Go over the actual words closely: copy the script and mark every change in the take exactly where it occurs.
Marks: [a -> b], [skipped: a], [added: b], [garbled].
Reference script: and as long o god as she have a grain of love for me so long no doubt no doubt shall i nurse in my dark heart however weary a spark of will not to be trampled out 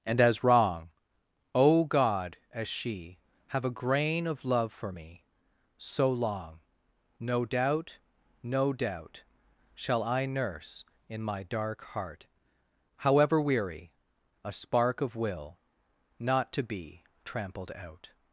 and as [long -> wrong] o god as she have a grain of love for me so long no doubt no doubt shall i nurse in my dark heart however weary a spark of will not to be trampled out